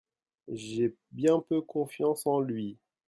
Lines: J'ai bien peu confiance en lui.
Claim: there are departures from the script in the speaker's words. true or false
false